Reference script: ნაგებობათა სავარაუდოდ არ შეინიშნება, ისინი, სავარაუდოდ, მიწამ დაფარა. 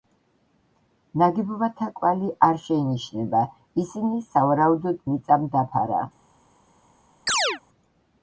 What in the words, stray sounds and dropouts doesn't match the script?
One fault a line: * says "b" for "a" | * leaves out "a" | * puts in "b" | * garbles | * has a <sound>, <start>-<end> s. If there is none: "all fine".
* says "კვალი" for "სავარაუდოდ"
* has a chirp, 7.3-7.6 s